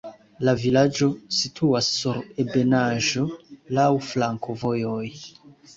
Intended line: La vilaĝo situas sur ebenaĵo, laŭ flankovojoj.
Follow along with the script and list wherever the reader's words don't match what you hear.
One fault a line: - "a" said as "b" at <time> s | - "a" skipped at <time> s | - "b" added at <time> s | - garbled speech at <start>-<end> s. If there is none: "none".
none